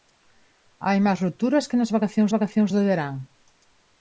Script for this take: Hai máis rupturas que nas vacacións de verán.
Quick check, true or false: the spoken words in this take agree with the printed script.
false